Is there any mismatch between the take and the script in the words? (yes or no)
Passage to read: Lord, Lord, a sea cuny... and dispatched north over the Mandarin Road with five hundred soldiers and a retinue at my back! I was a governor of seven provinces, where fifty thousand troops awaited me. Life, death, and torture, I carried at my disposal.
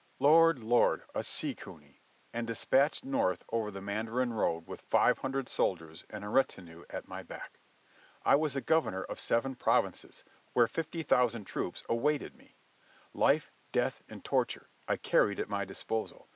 no